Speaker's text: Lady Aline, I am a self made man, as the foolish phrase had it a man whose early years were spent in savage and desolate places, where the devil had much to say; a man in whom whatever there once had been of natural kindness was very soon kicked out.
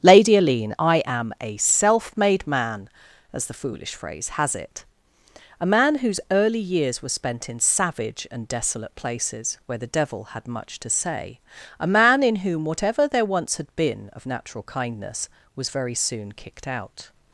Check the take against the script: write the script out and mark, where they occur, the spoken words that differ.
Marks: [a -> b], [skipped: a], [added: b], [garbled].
Lady Aline, I am a self made man, as the foolish phrase [had -> has] it a man whose early years were spent in savage and desolate places, where the devil had much to say; a man in whom whatever there once had been of natural kindness was very soon kicked out.